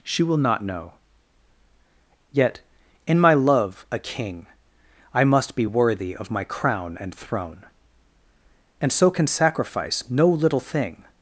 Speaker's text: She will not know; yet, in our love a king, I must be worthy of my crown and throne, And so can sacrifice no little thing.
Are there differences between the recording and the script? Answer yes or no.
yes